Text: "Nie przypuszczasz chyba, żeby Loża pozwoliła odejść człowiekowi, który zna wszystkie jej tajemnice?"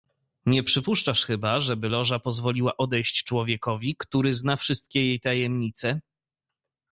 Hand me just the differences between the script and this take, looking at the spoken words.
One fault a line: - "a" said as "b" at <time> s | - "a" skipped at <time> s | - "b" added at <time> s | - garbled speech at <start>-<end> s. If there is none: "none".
none